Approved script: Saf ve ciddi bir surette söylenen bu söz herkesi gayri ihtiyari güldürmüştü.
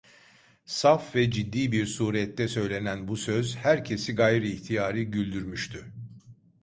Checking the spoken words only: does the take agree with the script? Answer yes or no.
yes